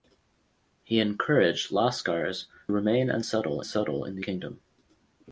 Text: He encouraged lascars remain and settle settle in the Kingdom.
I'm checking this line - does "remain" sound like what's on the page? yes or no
yes